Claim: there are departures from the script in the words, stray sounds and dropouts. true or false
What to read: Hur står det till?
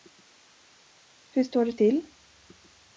false